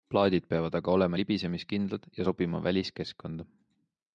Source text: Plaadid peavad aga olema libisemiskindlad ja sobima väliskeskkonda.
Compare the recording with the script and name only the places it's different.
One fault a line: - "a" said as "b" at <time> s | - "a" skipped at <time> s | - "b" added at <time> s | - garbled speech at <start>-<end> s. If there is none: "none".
none